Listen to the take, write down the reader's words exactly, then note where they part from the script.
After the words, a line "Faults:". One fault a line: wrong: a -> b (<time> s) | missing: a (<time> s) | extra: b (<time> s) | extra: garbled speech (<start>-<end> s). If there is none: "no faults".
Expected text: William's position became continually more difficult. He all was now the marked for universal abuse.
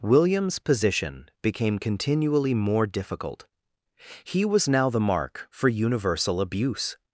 William's position became continually more difficult. He was now the mark for universal abuse.
Faults:
missing: all (4.4 s)
wrong: marked -> mark (5.0 s)